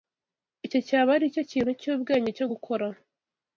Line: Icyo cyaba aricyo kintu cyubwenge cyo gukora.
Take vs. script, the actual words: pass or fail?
pass